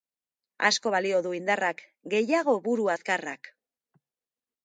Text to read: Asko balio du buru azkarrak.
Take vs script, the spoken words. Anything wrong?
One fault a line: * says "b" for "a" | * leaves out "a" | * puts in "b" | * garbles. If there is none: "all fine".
* puts in "indarrak gehiago"